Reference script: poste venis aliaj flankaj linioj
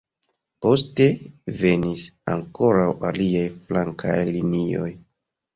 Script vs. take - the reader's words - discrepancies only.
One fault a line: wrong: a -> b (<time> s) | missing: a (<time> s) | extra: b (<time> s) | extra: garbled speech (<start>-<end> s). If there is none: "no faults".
extra: ankoraŭ (2.3 s)